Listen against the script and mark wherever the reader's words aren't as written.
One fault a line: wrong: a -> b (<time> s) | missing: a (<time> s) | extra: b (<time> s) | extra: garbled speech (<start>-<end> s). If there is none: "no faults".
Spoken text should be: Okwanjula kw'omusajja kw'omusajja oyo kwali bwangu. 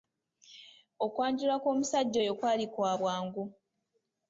missing: kw'omusajja (2.2 s)
extra: kwa (2.7 s)